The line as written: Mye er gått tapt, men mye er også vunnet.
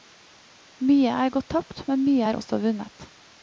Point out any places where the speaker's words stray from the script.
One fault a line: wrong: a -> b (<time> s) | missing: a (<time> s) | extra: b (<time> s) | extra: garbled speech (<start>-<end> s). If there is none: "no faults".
no faults